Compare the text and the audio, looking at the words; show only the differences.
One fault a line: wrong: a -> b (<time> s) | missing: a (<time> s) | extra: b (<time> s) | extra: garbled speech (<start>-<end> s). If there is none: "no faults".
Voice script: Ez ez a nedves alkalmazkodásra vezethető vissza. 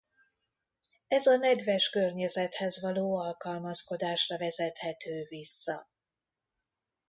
missing: ez (1.2 s)
extra: környezethez való (1.9 s)